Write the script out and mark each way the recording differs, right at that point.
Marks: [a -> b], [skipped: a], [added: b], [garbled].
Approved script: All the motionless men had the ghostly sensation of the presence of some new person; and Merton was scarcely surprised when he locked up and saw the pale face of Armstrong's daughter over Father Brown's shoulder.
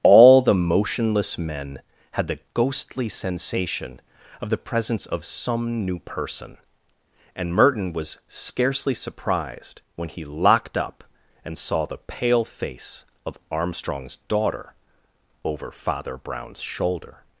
All the motionless men had the ghostly sensation of the presence of some new person; and Merton was scarcely surprised when he locked up and saw the pale face of Armstrong's daughter over Father Brown's shoulder.